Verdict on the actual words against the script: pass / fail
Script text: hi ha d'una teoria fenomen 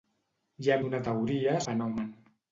pass